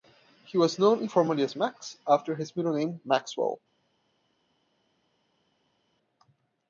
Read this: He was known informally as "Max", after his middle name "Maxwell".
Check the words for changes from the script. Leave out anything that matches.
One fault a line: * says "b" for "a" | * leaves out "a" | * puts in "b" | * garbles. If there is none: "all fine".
all fine